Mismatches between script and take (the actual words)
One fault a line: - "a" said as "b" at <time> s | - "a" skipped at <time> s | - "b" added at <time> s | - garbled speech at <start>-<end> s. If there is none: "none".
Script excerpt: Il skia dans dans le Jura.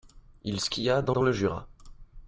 none